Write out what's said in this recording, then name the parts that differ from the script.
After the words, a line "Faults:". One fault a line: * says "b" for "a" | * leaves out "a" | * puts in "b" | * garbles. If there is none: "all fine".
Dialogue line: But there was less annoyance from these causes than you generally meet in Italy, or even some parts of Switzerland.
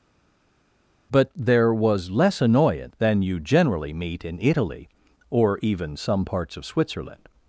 But there was less annoyance than you generally meet in Italy, or even some parts of Switzerland.
Faults:
* leaves out "from these causes"